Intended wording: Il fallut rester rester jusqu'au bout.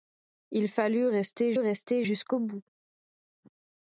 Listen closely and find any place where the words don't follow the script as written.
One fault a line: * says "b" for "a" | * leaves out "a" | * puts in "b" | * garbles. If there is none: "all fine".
all fine